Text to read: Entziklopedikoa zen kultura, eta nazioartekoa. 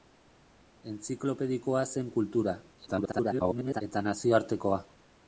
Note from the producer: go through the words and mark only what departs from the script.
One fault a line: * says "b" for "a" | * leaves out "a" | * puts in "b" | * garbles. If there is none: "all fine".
* garbles